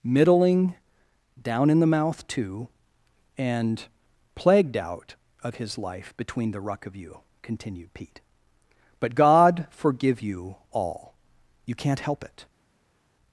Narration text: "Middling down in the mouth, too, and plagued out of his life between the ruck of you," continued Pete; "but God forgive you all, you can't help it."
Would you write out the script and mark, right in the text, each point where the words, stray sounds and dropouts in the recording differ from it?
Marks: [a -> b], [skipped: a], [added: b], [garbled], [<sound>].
"Middling down in the mouth, too, and plagued out of his life between the ruck of you," continued Pete; "but God forgive you all, you can't help it."